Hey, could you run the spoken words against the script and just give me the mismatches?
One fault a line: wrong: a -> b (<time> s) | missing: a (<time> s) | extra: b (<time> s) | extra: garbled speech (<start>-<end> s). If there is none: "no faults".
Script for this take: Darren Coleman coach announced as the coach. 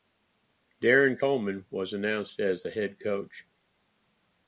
wrong: coach -> was (1.7 s)
extra: head (2.7 s)